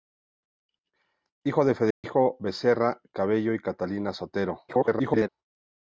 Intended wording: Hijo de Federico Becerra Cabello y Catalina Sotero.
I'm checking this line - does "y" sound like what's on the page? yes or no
yes